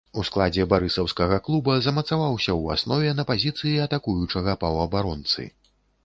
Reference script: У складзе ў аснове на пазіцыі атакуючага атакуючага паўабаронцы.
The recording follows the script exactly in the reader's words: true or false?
false